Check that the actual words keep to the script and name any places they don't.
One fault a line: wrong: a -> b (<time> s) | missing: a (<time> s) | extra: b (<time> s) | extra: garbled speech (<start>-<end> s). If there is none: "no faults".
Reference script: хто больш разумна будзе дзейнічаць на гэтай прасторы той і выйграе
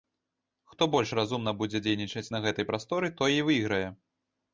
no faults